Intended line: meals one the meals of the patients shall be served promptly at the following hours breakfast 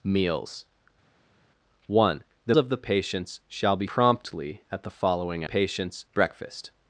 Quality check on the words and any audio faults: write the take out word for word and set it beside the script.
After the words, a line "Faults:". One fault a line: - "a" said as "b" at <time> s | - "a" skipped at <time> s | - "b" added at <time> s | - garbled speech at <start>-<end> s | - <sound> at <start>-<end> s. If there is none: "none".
meals one the of the patients shall be promptly at the following patients breakfast
Faults:
- "meals" skipped at 2.6 s
- "served" skipped at 3.9 s
- "hours" said as "patients" at 5.4 s